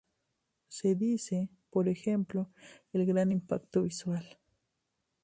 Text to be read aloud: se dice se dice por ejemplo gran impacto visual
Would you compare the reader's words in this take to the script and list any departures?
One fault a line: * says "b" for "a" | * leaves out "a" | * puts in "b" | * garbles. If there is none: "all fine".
* leaves out "se dice"
* puts in "el"